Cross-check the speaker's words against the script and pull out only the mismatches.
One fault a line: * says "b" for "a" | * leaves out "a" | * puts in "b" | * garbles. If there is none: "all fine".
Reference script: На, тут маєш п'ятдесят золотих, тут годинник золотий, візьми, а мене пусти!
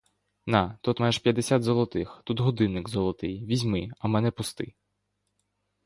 all fine